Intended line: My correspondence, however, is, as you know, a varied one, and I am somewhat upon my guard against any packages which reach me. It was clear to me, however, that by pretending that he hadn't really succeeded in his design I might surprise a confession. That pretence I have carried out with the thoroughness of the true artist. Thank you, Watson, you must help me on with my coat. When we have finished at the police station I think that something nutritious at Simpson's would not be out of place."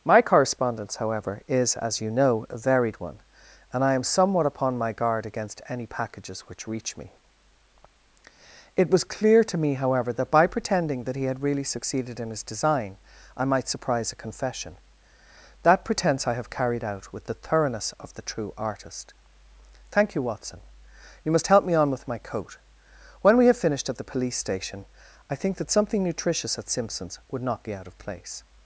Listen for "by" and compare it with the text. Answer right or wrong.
right